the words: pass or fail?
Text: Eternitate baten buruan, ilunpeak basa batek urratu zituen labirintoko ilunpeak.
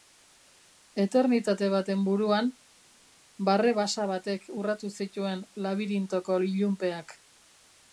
fail